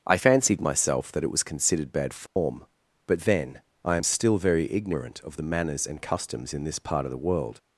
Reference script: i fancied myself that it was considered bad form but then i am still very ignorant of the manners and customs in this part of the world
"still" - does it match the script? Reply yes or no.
yes